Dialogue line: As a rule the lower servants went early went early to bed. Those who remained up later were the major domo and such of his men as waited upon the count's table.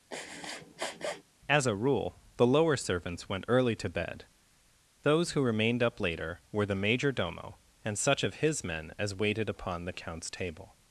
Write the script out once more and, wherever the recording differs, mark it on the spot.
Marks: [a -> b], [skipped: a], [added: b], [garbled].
As a rule the lower servants went early [skipped: went early] to bed. Those who remained up later were the major domo and such of his men as waited upon the count's table.